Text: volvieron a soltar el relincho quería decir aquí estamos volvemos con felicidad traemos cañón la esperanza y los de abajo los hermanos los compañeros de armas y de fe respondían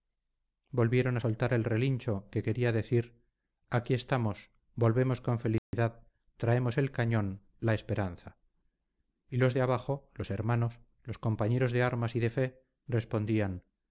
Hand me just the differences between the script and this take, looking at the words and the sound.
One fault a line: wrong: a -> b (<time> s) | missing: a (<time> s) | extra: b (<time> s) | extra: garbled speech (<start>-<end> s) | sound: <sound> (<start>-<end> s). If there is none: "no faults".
extra: que (2.3 s)
sound: dropout (5.6-5.7 s)
extra: el (6.8 s)